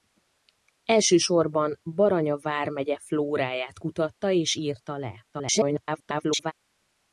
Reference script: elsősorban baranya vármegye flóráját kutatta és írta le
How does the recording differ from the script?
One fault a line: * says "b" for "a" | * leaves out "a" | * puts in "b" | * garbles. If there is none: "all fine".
* garbles